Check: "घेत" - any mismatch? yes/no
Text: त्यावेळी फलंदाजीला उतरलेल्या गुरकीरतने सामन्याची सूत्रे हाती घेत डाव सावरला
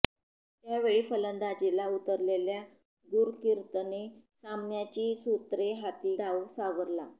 yes